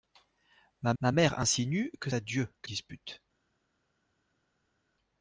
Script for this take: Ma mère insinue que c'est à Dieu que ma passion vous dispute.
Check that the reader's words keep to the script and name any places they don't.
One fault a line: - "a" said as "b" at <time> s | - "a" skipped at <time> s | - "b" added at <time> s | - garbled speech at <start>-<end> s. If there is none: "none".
- "ma" added at 1.0 s
- "c'est" skipped at 2.1 s
- "ma passion vous" skipped at 2.7 s